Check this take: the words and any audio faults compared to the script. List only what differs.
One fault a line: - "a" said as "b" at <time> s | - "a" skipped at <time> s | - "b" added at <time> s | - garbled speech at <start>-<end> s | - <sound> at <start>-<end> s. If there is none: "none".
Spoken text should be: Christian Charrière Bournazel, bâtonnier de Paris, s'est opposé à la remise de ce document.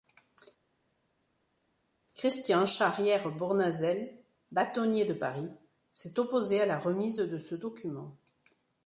none